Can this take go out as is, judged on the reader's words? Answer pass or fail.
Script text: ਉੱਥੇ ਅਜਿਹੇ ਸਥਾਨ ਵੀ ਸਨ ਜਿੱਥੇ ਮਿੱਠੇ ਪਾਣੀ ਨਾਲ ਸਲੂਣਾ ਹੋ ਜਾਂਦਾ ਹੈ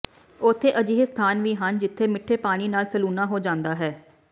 fail